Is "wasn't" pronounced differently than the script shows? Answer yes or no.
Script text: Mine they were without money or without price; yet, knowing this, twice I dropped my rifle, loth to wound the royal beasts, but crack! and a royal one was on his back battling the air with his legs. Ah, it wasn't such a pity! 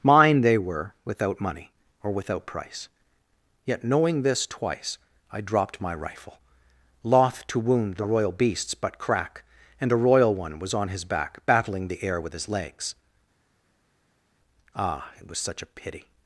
yes